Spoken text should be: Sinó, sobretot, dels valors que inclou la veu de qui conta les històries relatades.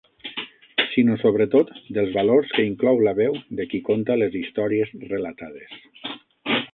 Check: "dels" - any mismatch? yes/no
no